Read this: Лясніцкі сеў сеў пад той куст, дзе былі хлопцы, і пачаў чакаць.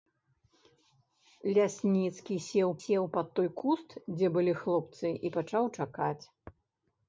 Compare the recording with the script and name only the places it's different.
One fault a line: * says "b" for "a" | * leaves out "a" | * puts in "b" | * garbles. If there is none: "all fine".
all fine